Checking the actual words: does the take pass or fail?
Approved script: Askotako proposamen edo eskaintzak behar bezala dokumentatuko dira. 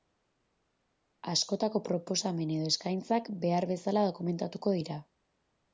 pass